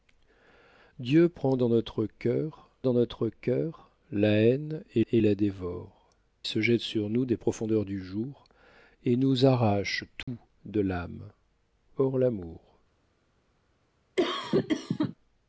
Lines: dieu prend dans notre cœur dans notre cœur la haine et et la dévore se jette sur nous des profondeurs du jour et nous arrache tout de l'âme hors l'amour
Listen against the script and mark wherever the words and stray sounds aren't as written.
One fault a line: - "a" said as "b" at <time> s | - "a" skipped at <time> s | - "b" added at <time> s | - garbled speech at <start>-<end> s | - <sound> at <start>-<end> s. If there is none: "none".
- dropout at 10.2-10.3 s
- cough at 14.2-15.1 s